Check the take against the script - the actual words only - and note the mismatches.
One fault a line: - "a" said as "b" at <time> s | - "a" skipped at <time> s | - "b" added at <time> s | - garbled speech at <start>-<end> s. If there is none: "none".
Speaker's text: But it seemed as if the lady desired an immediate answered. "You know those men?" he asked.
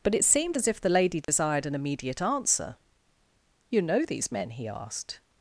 - "answered" said as "answer" at 2.2 s
- "those" said as "these" at 4.0 s